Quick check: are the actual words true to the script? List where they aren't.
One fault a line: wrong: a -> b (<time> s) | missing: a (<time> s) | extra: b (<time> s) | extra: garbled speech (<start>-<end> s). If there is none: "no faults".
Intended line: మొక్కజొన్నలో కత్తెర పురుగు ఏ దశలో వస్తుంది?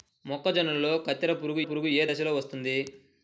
extra: పురుగు (1.6 s)